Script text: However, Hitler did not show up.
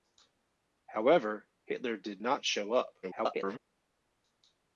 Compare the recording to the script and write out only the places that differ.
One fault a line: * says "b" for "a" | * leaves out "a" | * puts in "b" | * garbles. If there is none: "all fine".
* garbles